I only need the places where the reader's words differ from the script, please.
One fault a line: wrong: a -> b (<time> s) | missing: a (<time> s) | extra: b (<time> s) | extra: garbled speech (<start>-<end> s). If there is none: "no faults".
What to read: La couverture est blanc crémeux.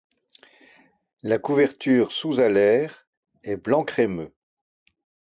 extra: sous alaire (2.1 s)